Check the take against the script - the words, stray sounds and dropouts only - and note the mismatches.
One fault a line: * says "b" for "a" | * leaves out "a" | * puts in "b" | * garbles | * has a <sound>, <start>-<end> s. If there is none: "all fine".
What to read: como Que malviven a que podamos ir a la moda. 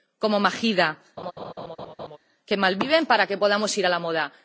* puts in "Mahida"
* has a laugh, 1.2-2.2 s
* says "para" for "a"